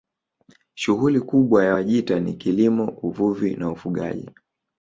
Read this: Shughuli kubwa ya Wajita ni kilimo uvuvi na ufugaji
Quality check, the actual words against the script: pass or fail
pass